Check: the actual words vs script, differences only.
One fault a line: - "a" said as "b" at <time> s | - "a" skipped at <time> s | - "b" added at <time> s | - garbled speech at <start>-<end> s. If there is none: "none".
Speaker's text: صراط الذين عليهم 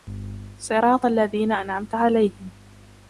- "أنعمت" added at 1.5 s